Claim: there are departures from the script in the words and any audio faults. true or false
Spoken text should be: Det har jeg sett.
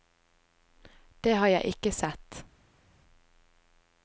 true